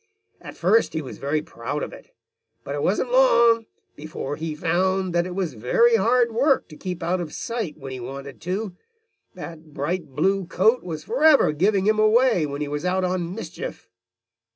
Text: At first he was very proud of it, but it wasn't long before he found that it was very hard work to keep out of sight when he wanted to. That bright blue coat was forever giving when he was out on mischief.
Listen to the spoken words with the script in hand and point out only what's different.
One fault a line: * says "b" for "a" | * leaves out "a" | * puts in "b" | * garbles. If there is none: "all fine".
* puts in "him away"